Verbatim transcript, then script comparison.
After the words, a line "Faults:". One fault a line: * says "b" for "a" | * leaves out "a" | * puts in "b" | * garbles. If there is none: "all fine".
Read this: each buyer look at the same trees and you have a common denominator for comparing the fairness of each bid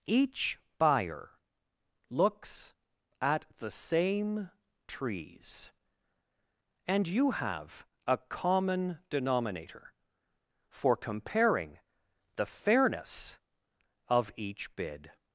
each buyer looks at the same trees and you have a common denominator for comparing the fairness of each bid
Faults:
* says "looks" for "look"